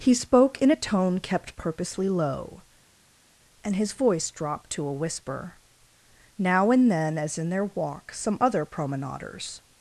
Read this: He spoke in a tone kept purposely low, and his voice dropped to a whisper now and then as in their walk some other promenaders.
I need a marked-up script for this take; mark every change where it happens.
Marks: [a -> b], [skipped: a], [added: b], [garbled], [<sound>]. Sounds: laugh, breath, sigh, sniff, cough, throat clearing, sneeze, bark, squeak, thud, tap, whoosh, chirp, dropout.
He spoke in a tone kept purposely low, and his voice dropped to a whisper now and then as in their walk some other promenaders.